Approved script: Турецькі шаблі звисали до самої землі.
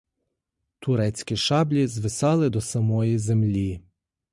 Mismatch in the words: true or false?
false